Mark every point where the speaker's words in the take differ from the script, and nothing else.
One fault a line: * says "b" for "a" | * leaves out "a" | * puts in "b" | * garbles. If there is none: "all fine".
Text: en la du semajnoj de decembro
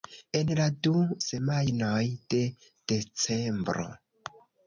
all fine